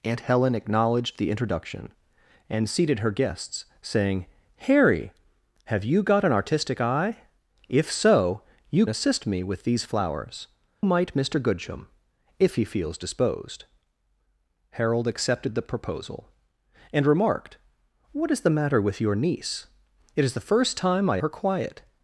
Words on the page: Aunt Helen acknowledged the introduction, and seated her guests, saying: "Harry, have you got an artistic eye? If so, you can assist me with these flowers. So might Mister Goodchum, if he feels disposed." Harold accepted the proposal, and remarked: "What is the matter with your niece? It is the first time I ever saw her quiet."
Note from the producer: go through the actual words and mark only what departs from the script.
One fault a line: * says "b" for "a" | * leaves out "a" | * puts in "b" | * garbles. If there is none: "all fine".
* leaves out "can"
* leaves out "So"
* leaves out "ever saw"